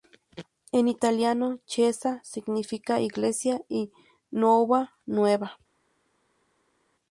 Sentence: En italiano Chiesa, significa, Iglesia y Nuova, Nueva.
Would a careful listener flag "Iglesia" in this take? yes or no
no